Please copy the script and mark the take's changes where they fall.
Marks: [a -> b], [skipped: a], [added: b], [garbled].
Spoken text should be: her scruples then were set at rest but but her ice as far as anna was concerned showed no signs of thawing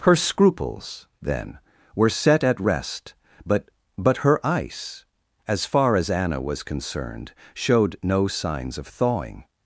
her scruples then were set at rest but but her ice as far as anna was concerned showed no signs of thawing